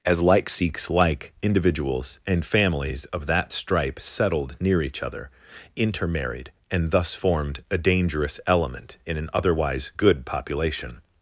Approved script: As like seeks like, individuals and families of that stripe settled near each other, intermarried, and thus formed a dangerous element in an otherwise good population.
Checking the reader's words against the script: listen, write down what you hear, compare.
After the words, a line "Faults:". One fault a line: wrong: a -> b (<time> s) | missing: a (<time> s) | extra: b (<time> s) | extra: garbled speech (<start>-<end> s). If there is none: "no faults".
As like seeks like, individuals and families of that stripe settled near each other, intermarried, and thus formed a dangerous element in an otherwise good population.
Faults:
no faults